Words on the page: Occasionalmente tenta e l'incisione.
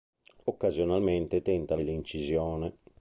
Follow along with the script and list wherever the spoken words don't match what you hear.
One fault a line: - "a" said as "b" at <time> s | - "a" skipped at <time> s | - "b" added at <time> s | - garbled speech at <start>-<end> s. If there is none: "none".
none